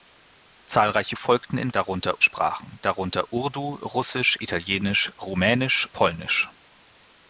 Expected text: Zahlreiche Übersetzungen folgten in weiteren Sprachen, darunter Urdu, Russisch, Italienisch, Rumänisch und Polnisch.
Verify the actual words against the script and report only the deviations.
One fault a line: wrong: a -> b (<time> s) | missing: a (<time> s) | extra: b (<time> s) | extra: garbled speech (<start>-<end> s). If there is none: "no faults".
missing: Übersetzungen (1.1 s)
wrong: weiteren -> darunter (1.7 s)
missing: und (5.9 s)